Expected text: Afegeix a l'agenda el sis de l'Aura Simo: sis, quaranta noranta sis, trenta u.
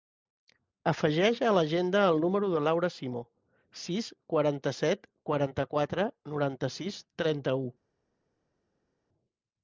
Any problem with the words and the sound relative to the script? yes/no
yes